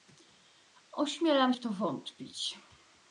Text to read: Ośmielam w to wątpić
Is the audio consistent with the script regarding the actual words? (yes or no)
yes